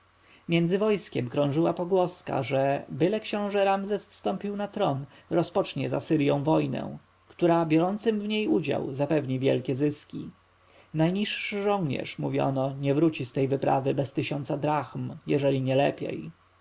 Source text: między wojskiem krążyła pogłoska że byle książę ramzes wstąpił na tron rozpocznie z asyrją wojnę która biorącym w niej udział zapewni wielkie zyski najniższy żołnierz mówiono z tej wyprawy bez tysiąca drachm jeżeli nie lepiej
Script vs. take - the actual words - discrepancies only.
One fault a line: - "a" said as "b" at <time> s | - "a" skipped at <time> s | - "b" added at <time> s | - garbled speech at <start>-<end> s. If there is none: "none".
- "nie wróci" added at 12.8 s